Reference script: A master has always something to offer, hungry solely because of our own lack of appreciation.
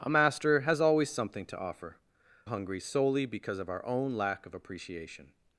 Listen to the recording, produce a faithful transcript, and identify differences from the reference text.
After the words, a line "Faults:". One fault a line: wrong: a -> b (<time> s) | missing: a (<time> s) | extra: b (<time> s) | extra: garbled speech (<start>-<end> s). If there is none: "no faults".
A master has always something to offer, hungry solely because of our own lack of appreciation.
Faults:
no faults